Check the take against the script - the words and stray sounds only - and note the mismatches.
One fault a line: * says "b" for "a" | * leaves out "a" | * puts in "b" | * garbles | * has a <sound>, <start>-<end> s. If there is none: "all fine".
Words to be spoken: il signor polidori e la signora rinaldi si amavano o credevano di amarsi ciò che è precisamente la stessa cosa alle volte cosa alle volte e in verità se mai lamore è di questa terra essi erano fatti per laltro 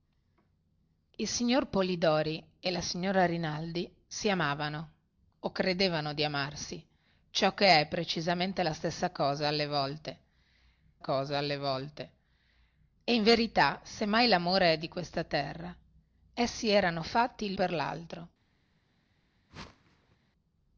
* has a whoosh, 19.5-20.2 s